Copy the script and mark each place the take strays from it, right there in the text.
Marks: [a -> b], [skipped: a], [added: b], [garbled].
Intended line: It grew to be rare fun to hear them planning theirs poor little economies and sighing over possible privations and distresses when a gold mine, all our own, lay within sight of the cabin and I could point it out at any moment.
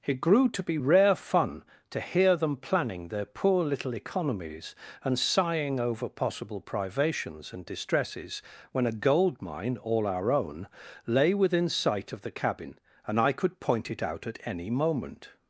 It grew to be rare fun to hear them planning [theirs -> their] poor little economies and sighing over possible privations and distresses when a gold mine, all our own, lay within sight of the cabin and I could point it out at any moment.